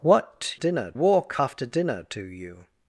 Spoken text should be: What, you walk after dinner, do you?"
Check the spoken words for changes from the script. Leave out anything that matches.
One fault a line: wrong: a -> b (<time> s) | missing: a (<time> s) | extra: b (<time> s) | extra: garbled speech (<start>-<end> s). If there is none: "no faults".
wrong: you -> dinner (0.5 s)